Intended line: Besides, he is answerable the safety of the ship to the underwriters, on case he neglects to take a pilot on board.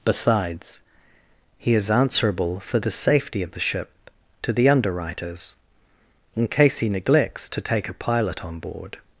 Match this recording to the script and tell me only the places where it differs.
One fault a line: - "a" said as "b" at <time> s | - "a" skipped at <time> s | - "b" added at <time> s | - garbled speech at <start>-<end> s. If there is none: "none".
- "for" added at 2.6 s
- "on" said as "in" at 6.3 s